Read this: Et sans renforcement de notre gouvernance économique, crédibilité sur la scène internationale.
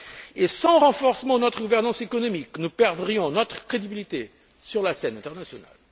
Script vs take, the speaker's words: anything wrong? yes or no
yes